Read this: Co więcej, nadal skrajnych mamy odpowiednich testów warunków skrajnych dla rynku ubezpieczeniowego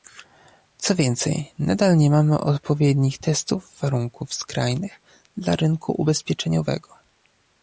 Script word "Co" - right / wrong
right